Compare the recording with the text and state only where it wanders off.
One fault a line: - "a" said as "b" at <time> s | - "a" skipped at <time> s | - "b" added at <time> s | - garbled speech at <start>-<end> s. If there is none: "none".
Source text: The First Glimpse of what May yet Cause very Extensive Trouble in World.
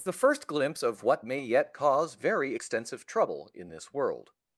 - "this" added at 3.7 s